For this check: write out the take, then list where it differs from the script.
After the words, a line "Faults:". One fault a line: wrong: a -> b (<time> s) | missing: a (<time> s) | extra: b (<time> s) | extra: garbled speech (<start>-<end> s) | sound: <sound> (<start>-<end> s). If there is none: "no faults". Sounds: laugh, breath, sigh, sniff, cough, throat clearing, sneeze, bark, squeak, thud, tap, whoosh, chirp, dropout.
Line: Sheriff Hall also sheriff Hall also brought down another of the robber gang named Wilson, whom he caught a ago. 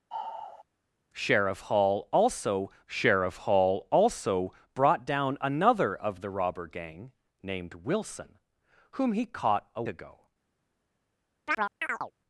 Sheriff Hall also sheriff Hall also brought down another of the robber gang named Wilson, whom he caught a ago.
Faults:
sound: sigh (0.1-0.7 s)
sound: chirp (11.5-12.1 s)